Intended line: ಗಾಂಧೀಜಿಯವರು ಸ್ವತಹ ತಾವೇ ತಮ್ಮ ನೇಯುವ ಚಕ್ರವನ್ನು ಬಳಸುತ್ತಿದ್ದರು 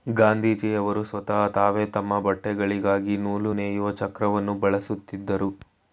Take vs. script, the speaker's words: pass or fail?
fail